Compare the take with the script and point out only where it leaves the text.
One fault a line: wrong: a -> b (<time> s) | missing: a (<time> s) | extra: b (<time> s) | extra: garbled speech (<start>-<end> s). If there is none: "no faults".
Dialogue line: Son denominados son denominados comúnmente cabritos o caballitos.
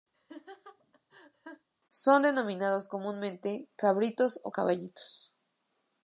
missing: son denominados (2.9 s)